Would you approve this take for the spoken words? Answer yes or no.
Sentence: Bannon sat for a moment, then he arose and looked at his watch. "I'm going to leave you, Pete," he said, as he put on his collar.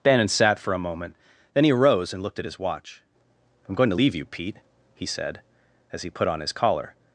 yes